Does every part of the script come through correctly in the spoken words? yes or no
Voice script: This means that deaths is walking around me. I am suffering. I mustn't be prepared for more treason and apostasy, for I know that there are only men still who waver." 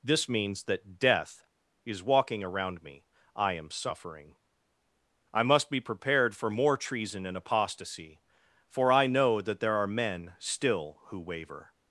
no